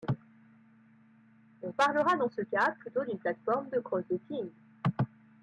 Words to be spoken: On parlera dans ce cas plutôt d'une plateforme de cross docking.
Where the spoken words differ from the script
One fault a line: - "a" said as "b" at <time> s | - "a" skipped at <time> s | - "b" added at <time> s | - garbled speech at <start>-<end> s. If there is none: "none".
none